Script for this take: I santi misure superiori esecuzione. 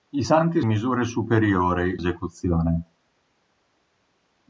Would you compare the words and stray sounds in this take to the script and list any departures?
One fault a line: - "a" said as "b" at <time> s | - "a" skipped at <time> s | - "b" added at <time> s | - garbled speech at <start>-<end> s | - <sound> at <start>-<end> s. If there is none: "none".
none